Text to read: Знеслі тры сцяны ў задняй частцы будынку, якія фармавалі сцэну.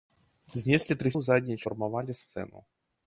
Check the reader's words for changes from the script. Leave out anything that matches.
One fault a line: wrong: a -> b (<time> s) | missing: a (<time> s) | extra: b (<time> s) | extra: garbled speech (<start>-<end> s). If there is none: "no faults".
missing: сцяны (1.1 s)
missing: частцы будынку якія (1.6 s)